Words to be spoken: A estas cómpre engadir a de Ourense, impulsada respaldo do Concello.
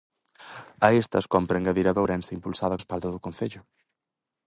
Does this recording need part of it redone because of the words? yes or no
no